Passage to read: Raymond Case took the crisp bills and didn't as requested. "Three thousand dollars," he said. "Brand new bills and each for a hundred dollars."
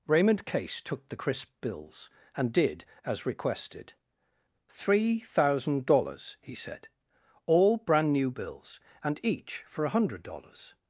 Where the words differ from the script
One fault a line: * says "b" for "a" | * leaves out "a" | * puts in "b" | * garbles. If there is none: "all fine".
* says "did" for "didn't"
* puts in "All"